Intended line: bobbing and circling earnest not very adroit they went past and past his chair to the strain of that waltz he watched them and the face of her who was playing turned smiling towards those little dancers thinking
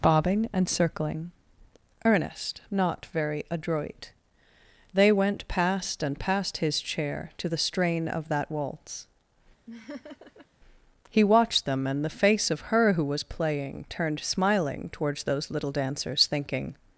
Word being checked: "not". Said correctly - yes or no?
yes